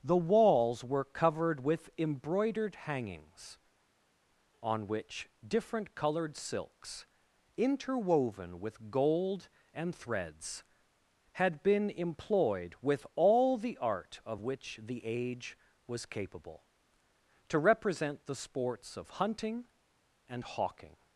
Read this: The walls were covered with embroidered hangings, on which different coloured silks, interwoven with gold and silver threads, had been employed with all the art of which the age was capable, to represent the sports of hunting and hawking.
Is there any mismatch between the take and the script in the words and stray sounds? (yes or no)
yes